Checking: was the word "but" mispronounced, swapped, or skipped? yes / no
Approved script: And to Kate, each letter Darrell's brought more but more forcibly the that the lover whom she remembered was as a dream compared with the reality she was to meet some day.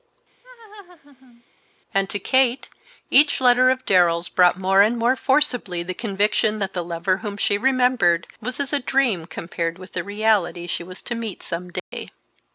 yes